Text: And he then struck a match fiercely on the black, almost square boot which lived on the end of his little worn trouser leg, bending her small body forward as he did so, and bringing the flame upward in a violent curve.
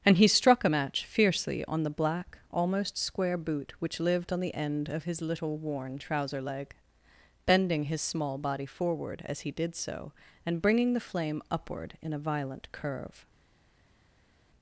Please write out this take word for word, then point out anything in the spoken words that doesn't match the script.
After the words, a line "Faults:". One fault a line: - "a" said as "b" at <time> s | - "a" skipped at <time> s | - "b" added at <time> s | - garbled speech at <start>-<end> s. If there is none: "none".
And he struck a match fiercely on the black, almost square boot which lived on the end of his little worn trouser leg, bending his small body forward as he did so, and bringing the flame upward in a violent curve.
Faults:
- "then" skipped at 0.3 s
- "her" said as "his" at 7.8 s